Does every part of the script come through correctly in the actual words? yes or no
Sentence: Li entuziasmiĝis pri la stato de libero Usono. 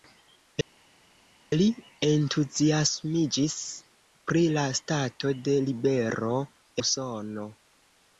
yes